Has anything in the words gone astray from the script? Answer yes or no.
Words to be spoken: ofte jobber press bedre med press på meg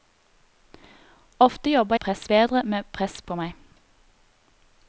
no